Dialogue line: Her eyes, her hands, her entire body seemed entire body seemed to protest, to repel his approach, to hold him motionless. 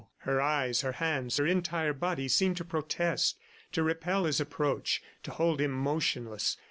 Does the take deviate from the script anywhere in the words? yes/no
yes